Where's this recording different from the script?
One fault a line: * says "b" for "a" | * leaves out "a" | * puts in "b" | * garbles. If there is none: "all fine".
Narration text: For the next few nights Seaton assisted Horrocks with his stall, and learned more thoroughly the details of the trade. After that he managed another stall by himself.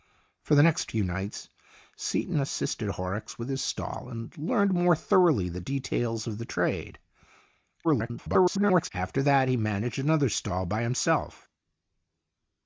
* garbles